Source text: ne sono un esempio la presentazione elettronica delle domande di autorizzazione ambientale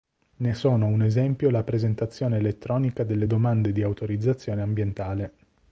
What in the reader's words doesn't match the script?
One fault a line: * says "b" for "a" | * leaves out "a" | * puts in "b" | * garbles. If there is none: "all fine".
all fine